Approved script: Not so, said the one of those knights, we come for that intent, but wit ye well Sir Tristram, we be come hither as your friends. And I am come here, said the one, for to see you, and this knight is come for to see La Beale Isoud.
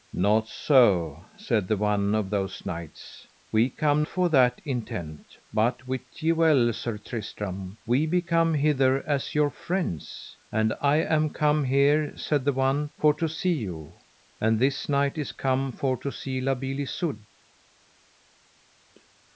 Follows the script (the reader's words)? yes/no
yes